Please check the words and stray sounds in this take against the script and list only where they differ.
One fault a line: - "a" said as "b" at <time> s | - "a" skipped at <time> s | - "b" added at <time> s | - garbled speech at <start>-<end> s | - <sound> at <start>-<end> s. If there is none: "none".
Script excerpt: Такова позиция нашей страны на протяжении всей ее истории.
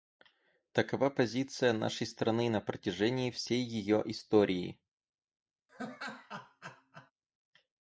- laugh at 5.7-7.1 s